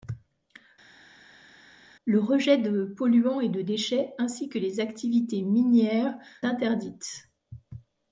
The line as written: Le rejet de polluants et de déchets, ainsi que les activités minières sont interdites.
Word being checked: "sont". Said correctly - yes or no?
no